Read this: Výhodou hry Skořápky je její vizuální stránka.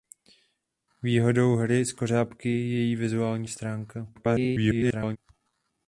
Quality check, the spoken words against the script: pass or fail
fail